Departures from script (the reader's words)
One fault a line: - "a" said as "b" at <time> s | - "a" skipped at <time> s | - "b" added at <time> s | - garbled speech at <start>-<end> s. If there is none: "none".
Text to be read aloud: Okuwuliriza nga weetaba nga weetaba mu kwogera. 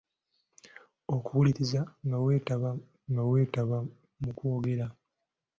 none